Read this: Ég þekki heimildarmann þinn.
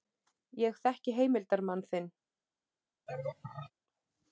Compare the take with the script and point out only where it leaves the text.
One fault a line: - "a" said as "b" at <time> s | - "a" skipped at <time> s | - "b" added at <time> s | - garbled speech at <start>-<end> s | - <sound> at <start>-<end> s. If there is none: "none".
- laugh at 3.1-3.7 s